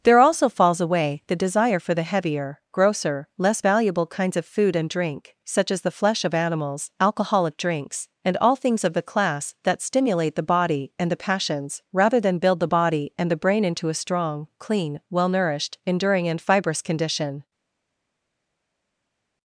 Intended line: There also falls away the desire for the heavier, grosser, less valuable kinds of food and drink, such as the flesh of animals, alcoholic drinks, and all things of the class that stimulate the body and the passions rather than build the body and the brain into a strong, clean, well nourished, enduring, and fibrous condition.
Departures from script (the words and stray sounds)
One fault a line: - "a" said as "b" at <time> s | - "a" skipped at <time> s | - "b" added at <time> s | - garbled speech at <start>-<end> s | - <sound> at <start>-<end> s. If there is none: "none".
none